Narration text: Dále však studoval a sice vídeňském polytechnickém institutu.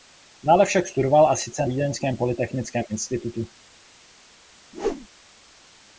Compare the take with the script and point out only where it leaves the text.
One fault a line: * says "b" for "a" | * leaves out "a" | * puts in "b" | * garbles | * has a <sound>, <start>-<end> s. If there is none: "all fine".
* has a whoosh, 4.7-5.1 s